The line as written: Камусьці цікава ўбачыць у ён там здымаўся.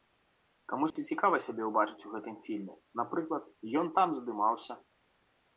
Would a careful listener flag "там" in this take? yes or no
no